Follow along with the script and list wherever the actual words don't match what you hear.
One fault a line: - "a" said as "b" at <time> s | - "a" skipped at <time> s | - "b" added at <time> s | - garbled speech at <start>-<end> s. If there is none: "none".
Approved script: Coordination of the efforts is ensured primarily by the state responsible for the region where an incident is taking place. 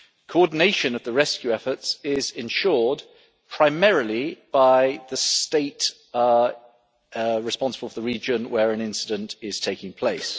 - "rescue" added at 1.1 s